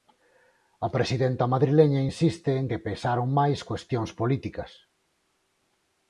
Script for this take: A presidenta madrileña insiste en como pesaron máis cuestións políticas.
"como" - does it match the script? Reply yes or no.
no